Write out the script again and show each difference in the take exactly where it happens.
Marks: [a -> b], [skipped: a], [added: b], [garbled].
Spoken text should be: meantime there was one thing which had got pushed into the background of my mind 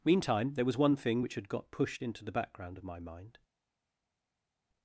meantime there was one thing which had got pushed into the background of my mind